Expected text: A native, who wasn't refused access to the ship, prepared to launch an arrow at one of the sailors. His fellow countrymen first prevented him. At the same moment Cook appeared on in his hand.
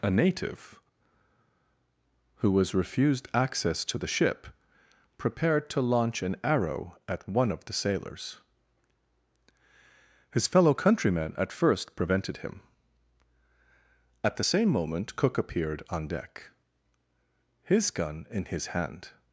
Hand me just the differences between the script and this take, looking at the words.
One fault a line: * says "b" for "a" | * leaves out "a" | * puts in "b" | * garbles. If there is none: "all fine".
* says "was" for "wasn't"
* puts in "at"
* puts in "deck his gun"